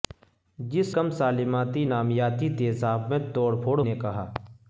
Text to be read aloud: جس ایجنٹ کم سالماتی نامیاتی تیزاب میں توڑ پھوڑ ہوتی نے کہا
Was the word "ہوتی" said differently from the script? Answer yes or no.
yes